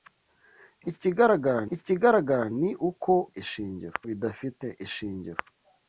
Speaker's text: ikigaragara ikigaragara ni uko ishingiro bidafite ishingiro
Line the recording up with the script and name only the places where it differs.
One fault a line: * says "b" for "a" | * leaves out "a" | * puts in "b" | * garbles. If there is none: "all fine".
all fine